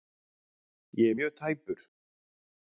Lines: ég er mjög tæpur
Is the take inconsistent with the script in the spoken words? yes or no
no